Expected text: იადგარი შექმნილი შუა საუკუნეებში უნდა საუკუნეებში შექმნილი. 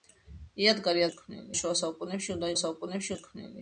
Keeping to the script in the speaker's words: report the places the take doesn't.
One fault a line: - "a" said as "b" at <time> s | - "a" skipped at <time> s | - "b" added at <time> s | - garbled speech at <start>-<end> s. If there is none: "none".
none